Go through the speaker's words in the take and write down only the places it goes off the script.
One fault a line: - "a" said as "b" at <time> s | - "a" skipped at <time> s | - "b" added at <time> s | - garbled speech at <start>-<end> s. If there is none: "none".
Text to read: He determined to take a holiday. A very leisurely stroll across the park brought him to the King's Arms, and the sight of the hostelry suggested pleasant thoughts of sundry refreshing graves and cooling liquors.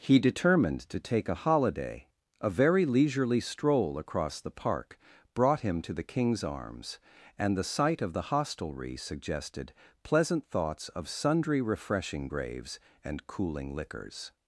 none